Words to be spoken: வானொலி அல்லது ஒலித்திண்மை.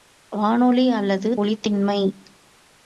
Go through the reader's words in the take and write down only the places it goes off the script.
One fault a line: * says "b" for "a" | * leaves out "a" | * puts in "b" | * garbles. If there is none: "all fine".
all fine